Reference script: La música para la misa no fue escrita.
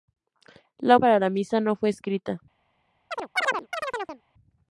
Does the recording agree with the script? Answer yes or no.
no